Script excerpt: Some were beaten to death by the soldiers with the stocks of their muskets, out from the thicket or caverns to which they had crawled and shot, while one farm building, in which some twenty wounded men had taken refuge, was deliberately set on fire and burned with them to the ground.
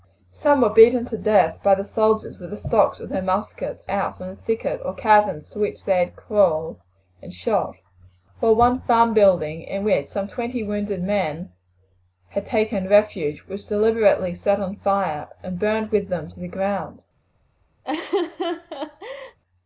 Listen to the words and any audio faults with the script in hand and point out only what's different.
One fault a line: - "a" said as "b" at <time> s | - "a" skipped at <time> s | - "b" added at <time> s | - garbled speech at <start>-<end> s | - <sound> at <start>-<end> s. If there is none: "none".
- laugh at 17.8-19.4 s